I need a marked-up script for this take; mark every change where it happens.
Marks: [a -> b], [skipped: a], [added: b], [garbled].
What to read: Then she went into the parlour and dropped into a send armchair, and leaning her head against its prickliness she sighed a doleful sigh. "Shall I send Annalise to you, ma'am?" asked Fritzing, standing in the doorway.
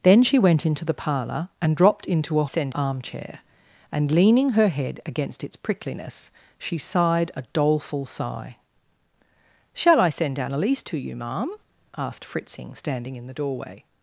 Then she went into the parlour and dropped into a send armchair, and leaning her head against its prickliness she sighed a doleful sigh. "Shall I send Annalise to you, ma'am?" asked Fritzing, standing in the doorway.